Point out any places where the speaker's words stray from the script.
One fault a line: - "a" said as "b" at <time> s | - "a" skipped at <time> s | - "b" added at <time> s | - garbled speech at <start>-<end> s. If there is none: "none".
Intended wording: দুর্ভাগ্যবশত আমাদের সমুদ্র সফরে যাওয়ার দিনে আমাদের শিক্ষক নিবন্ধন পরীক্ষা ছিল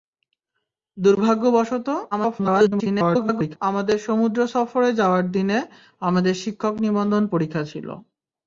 - garbled speech at 2.1-3.6 s